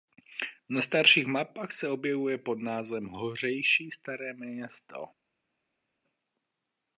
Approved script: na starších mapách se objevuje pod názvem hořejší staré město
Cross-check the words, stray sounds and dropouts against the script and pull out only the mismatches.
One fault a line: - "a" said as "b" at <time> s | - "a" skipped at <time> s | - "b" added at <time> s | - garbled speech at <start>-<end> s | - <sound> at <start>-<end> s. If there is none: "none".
none